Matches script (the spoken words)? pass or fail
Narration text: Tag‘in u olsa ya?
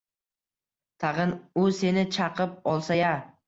fail